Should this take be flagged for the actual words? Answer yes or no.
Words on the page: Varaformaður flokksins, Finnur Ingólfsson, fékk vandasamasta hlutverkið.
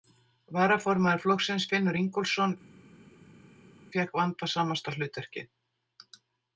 no